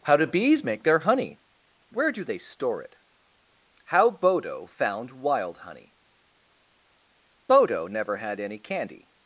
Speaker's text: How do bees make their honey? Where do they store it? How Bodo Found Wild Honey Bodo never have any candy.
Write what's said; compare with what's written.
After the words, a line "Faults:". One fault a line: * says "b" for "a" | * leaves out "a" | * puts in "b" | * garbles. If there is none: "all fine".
How do bees make their honey? Where do they store it? How Bodo Found Wild Honey Bodo never had any candy.
Faults:
* says "had" for "have"